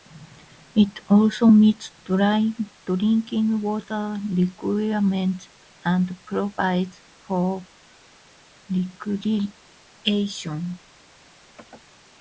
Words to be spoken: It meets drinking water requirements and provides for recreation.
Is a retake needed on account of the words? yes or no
yes